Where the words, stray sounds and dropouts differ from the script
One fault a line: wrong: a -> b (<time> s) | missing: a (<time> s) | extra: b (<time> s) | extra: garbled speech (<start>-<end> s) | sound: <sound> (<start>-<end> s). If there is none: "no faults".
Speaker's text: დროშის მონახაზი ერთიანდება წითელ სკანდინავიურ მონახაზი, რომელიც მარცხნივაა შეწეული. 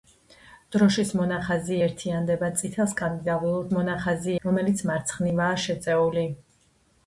no faults